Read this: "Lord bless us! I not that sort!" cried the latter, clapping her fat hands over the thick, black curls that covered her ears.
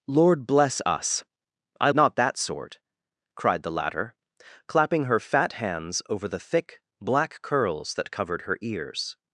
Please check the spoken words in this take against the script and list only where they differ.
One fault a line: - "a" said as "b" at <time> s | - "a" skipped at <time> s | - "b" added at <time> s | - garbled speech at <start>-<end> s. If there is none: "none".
none